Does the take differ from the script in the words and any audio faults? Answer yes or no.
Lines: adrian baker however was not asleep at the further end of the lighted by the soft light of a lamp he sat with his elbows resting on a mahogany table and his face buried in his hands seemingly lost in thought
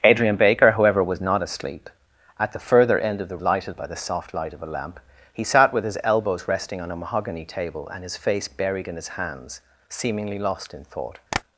yes